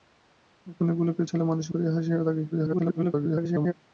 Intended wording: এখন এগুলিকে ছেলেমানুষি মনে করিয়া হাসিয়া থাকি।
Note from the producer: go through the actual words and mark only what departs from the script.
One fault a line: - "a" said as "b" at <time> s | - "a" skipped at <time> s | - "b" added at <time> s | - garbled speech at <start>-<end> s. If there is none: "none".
- "মনে" skipped at 1.7 s
- garbled speech at 2.5-3.7 s